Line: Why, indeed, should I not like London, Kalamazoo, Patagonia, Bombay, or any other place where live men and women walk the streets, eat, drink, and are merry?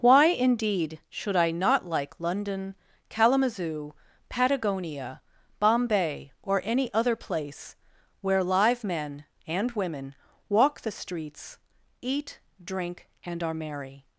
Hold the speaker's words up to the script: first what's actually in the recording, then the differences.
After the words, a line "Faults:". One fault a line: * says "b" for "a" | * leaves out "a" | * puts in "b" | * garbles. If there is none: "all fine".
Why, indeed, should I not like London, Kalamazoo, Patagonia, Bombay, or any other place where live men and women walk the streets, eat, drink, and are merry?
Faults:
all fine